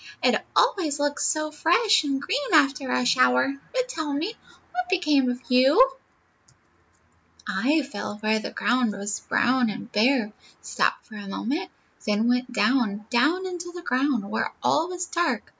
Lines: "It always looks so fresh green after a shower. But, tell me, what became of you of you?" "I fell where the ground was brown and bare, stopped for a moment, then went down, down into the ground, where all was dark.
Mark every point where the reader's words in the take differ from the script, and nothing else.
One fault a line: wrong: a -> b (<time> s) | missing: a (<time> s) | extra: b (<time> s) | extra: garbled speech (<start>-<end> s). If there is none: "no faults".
extra: and (2.0 s)
missing: of you (5.9 s)